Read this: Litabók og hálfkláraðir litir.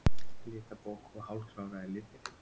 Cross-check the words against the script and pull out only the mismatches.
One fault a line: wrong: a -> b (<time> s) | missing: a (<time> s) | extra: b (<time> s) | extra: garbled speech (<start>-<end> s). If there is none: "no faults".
no faults